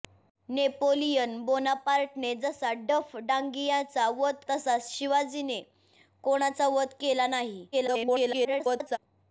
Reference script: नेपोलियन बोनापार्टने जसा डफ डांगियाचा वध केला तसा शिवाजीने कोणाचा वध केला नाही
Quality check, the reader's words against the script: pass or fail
fail